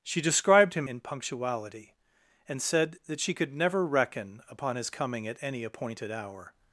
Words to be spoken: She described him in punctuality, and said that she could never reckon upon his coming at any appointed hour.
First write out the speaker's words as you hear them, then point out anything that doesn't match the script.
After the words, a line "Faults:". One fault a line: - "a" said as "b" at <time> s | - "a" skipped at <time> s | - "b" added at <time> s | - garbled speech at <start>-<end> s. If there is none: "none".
She described him in punctuality, and said that she could never reckon upon his coming at any appointed hour.
Faults:
none